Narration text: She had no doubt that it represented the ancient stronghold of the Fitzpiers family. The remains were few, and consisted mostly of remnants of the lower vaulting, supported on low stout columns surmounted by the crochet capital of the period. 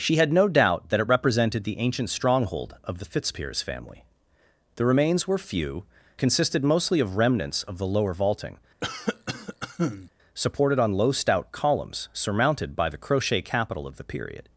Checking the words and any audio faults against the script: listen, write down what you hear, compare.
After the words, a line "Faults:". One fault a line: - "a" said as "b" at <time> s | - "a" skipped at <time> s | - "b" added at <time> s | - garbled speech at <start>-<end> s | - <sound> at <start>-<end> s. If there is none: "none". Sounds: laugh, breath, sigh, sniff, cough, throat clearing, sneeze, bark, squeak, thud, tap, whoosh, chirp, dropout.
She had no doubt that it represented the ancient stronghold of the Fitzpiers family. The remains were few, consisted mostly of remnants of the lower vaulting, supported on low stout columns surmounted by the crochet capital of the period.
Faults:
- "and" skipped at 5.8 s
- cough at 8.8-10.1 s